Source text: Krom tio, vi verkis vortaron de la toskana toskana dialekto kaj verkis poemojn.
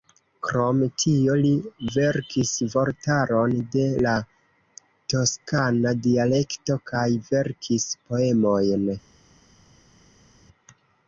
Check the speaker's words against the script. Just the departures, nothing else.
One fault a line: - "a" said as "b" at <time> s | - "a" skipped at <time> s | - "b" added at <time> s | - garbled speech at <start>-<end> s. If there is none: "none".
- "vi" said as "li" at 1.4 s
- "toskana" skipped at 5.9 s